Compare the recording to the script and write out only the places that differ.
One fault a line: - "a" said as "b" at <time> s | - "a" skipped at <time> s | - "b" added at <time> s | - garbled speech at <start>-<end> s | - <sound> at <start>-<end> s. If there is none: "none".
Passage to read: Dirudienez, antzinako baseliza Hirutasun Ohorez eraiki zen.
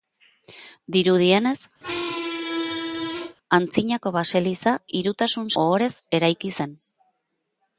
- squeak at 1.8-3.4 s